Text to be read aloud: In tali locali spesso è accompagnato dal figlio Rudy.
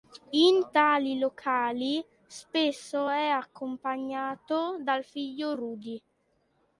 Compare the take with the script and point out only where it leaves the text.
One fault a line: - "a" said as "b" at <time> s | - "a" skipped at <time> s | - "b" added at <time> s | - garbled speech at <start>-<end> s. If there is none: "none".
none